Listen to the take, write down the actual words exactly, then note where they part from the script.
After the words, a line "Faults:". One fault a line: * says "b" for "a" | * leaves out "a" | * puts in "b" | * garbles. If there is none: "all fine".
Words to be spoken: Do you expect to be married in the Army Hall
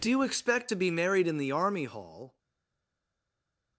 Do you expect to be married in the Army Hall
Faults:
all fine